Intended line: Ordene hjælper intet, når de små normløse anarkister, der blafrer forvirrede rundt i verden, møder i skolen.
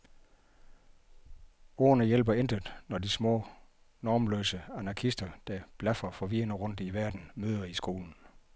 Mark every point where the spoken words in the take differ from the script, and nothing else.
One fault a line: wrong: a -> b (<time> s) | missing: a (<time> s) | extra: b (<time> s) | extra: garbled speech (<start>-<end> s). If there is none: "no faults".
no faults